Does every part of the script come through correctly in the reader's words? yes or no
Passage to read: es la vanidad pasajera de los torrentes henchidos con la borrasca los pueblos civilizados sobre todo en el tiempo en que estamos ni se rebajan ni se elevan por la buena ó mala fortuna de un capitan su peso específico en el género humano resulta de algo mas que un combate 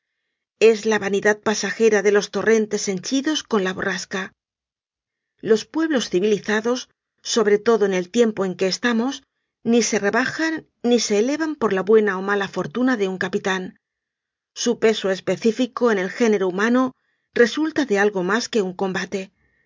yes